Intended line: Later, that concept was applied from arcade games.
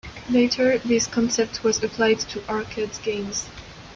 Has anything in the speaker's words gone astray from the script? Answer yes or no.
yes